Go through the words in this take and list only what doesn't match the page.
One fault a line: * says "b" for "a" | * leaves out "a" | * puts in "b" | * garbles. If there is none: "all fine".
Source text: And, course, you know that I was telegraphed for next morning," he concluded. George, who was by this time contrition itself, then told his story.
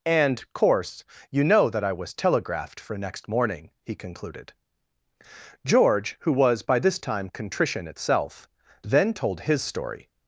all fine